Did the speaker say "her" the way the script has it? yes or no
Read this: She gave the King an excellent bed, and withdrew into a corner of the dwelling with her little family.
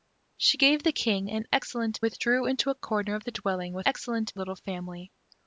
no